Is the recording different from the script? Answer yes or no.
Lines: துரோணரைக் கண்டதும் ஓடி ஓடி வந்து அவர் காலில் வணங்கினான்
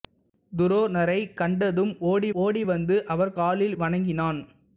no